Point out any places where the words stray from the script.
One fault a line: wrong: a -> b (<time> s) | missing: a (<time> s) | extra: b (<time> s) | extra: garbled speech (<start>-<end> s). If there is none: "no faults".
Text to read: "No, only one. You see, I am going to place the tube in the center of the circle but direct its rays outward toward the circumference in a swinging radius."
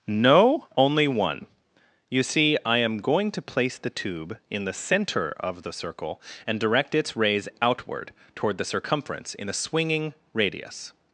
wrong: but -> and (6.5 s)